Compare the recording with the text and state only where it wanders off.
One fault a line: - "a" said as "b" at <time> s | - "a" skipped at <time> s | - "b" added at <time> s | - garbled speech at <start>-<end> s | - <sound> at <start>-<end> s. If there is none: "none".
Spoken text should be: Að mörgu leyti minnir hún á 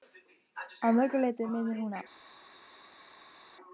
none